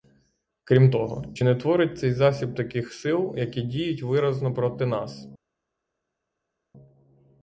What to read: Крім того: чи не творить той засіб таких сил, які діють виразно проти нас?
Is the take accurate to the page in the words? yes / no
no